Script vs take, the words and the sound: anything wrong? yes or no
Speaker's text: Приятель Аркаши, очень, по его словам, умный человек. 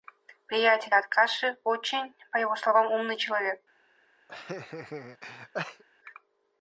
yes